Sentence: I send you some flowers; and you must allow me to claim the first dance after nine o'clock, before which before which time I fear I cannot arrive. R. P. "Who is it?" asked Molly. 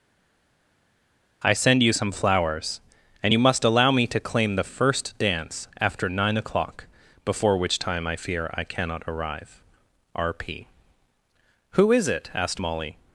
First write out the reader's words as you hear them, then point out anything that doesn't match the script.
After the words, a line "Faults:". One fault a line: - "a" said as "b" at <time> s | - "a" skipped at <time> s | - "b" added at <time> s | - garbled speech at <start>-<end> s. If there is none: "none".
I send you some flowers; and you must allow me to claim the first dance after nine o'clock, before which time I fear I cannot arrive. R. P. "Who is it?" asked Molly.
Faults:
- "before which" skipped at 7.8 s